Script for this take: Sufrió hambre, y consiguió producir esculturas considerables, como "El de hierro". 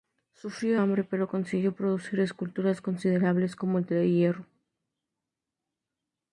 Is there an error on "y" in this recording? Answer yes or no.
yes